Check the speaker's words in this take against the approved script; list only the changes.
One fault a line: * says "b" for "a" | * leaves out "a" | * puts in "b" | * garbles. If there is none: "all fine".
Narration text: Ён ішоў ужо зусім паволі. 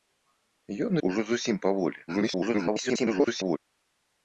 * leaves out "ішоў"
* garbles